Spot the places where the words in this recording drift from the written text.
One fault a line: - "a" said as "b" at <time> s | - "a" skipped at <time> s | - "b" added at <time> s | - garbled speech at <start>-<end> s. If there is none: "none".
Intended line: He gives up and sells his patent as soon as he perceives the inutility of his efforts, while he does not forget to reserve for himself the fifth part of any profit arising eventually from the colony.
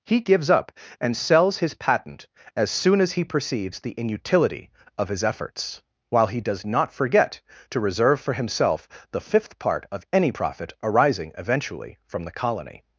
none